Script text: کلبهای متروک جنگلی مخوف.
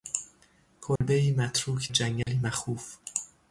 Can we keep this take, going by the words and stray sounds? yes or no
no